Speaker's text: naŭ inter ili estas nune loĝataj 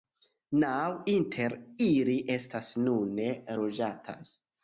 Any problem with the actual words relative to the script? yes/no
no